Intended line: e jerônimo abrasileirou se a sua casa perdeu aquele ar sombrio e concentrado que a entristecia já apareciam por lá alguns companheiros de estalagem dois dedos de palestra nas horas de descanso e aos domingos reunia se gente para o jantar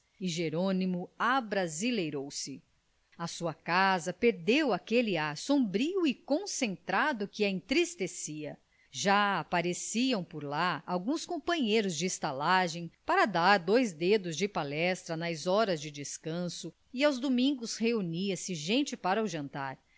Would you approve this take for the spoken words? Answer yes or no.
no